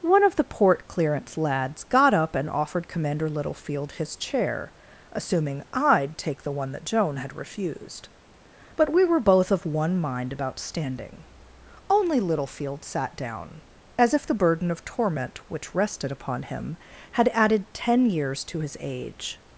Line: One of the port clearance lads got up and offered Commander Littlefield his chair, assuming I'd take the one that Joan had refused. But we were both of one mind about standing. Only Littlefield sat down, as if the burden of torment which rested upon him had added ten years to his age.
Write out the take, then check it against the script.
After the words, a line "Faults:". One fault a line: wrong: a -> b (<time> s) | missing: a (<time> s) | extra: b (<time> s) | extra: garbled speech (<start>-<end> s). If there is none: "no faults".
One of the port clearance lads got up and offered Commander Littlefield his chair, assuming I'd take the one that Joan had refused. But we were both of one mind about standing. Only Littlefield sat down, as if the burden of torment which rested upon him had added ten years to his age.
Faults:
no faults